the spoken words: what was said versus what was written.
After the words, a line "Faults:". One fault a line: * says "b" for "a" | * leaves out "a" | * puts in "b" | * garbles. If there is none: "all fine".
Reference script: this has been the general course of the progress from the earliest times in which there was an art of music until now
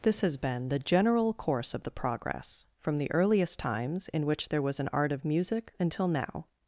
this has been the general course of the progress from the earliest times in which there was an art of music until now
Faults:
all fine